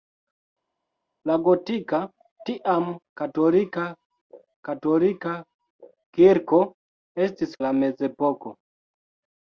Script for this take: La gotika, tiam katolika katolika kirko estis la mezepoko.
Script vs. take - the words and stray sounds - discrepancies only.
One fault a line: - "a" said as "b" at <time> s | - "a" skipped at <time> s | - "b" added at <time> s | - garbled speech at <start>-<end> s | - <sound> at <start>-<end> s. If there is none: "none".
none